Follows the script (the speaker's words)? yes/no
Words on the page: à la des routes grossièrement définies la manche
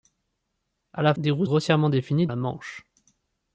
yes